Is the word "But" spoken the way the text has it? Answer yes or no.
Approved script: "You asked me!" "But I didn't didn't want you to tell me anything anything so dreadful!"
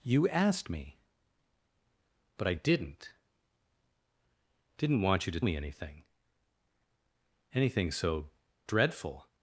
yes